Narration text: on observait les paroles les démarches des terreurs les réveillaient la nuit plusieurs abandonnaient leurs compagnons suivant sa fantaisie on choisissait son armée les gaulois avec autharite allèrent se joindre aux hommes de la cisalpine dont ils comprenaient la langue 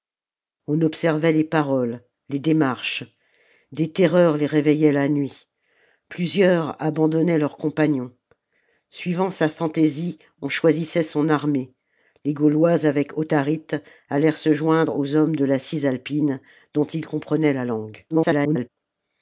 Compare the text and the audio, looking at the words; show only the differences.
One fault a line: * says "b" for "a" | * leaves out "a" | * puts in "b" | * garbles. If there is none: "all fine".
* garbles